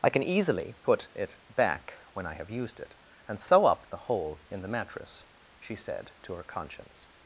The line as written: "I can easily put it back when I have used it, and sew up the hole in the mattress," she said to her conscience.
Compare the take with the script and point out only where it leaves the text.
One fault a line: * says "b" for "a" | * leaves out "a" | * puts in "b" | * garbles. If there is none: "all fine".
all fine